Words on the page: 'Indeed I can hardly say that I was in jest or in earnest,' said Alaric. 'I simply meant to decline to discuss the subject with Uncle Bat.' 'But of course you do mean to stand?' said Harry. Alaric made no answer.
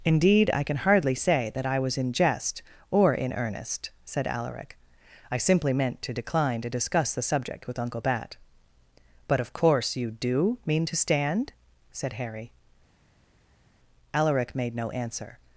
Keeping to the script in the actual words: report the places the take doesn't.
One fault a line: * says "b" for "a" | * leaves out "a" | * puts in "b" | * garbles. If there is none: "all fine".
all fine